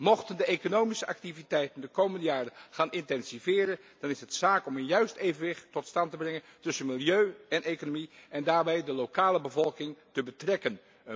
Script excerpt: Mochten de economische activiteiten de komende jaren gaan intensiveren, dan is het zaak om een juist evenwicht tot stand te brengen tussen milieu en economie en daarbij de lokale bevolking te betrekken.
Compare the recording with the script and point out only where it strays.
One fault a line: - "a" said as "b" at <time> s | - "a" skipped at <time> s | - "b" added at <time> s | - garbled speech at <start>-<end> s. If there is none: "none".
none